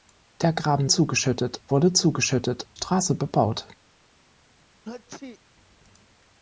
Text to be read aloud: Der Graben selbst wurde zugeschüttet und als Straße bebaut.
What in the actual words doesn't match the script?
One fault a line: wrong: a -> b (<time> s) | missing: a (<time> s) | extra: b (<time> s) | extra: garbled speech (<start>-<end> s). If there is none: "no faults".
wrong: selbst -> zugeschüttet (0.8 s)
missing: und als (2.7 s)